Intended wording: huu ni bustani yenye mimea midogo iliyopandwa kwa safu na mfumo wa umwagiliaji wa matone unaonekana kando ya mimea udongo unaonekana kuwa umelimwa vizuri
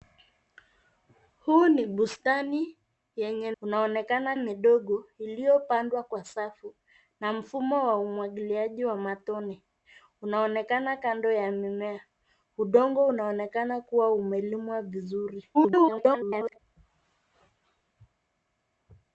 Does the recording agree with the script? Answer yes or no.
no